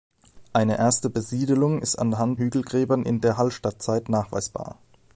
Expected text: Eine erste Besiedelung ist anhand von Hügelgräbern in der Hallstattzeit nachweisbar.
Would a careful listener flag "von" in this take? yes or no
yes